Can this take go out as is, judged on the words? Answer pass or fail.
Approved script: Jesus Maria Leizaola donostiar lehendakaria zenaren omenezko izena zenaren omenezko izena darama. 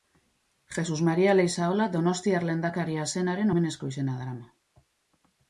fail